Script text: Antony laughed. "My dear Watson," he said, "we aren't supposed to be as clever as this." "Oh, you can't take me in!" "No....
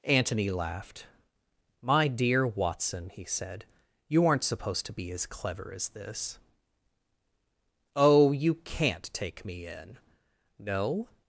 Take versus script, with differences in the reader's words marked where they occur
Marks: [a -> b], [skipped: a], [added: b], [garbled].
Antony laughed. "My dear Watson," he said, ["we -> you] aren't supposed to be as clever as this." "Oh, you can't take me in!" "No....